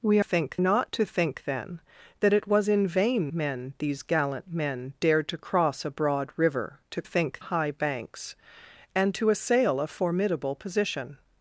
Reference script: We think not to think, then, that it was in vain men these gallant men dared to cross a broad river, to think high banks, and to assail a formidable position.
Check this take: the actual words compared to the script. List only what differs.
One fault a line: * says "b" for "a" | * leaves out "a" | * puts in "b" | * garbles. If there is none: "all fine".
all fine